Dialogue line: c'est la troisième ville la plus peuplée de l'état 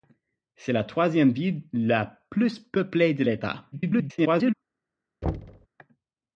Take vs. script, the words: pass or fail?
fail